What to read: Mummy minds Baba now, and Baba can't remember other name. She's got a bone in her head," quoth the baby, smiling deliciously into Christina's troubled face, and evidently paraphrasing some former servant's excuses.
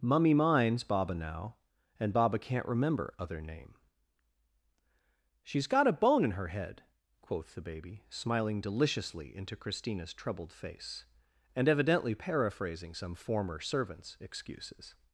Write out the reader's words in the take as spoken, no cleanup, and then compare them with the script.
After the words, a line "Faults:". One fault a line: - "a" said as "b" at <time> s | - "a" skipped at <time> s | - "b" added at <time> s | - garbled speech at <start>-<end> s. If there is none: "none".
Mummy minds Baba now, and Baba can't remember other name. She's got a bone in her head," quoth the baby, smiling deliciously into Christina's troubled face, and evidently paraphrasing some former servant's excuses.
Faults:
none